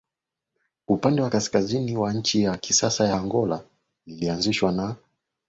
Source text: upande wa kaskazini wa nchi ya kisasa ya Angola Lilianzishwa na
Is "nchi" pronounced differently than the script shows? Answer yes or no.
no